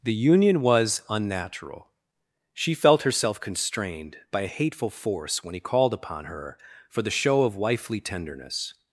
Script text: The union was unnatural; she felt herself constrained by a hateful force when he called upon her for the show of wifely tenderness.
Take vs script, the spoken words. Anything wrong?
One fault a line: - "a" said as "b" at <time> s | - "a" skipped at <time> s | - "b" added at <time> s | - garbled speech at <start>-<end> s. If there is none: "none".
none